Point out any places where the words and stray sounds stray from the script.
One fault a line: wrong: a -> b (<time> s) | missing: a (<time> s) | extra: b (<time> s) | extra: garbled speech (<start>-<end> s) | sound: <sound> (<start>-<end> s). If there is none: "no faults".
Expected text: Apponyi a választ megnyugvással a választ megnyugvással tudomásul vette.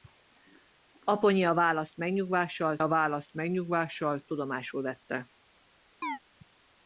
sound: chirp (6.0-6.2 s)